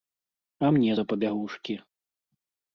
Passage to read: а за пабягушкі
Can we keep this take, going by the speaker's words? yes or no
no